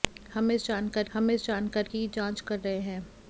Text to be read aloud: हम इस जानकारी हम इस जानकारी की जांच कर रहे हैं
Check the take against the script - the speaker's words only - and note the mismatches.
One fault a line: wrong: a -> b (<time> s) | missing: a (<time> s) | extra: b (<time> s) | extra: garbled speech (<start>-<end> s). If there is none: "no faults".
no faults